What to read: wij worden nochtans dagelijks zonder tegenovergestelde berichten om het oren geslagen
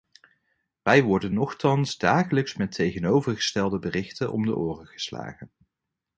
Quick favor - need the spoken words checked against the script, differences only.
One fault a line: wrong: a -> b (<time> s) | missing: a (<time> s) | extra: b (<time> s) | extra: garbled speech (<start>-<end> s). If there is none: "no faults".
wrong: zonder -> met (2.6 s)
wrong: het -> de (4.5 s)